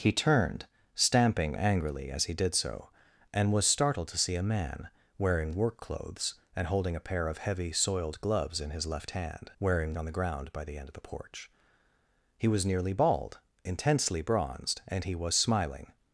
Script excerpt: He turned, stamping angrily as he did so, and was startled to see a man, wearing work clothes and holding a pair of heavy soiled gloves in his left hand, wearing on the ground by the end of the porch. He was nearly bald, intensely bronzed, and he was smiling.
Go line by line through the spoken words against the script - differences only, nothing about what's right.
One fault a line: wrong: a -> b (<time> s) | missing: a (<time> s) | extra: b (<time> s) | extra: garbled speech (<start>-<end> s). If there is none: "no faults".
no faults